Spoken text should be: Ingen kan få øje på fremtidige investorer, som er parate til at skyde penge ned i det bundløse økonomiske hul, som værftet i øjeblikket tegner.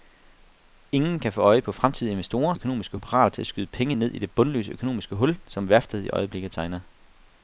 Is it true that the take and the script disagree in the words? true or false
true